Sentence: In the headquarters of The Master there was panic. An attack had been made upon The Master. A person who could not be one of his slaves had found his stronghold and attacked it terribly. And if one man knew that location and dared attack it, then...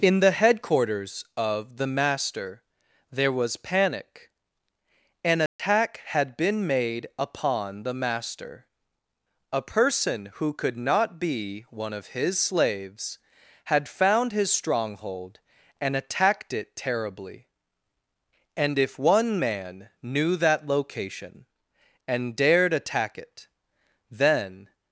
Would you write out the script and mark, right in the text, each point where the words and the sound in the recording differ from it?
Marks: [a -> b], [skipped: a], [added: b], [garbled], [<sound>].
In the headquarters of The Master there was panic. An attack [dropout] had been made upon The Master. A person who could not be one of his slaves had found his stronghold and attacked it terribly. And if one man knew that location and dared attack it, then...